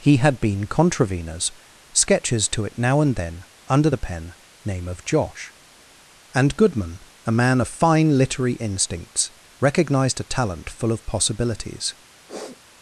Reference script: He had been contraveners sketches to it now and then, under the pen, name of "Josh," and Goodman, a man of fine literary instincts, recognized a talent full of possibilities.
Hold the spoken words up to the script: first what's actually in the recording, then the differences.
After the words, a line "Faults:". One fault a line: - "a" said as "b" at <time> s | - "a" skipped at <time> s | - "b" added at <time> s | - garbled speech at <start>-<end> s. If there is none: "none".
He had been contraveners sketches to it now and then, under the pen, name of "Josh," and Goodman, a man of fine literary instincts, recognized a talent full of possibilities.
Faults:
none